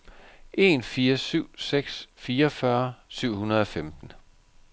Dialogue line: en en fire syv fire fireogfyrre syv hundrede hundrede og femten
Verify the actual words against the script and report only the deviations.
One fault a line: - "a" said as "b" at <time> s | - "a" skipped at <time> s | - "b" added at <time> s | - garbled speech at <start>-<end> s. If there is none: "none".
- "en" skipped at 0.8 s
- "fire" said as "seks" at 1.6 s
- "hundrede" skipped at 3.6 s